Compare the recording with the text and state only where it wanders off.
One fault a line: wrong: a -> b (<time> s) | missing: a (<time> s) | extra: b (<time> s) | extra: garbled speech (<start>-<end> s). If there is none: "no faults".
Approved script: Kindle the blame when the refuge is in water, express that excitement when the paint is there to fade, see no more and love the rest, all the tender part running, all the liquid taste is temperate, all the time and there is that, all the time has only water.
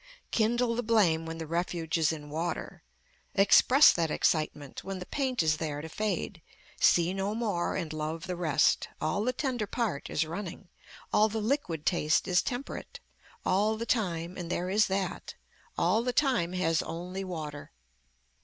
extra: is (10.1 s)